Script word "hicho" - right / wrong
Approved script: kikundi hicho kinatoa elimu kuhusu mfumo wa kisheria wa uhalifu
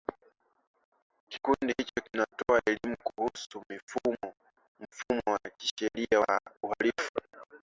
right